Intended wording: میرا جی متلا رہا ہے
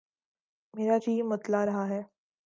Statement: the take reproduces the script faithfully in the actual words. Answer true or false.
true